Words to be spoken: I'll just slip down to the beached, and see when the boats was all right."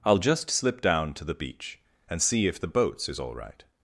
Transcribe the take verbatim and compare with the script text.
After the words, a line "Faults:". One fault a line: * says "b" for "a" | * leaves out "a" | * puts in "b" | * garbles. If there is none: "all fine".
I'll just slip down to the beach, and see if the boats is all right."
Faults:
* says "beach" for "beached"
* says "if" for "when"
* says "is" for "was"